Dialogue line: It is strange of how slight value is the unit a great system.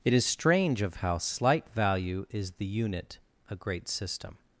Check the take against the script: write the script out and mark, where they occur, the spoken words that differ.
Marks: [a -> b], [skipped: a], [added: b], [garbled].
It is strange of how slight value is the unit a great system.